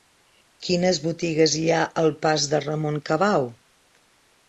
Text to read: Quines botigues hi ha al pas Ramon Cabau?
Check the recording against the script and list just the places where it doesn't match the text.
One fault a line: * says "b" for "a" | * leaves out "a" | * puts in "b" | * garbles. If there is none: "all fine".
* puts in "de"